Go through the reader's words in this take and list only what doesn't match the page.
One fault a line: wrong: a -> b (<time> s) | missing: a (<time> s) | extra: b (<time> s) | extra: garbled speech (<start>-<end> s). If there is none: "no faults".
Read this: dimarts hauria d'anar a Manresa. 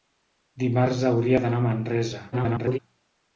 extra: garbled speech (2.3-2.8 s)